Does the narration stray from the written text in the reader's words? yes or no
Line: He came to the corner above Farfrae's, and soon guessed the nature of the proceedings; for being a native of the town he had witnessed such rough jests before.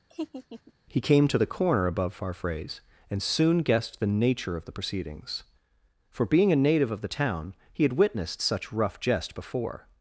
yes